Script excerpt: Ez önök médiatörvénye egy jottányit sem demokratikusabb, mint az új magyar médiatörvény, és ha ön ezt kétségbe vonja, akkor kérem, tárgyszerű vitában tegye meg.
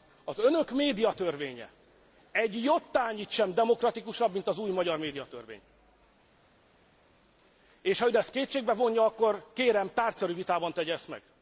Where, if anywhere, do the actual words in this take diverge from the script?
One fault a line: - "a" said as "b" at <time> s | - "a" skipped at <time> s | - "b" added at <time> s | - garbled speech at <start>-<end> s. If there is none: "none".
- "Ez" said as "Az" at 0.2 s
- "ezt" added at 10.9 s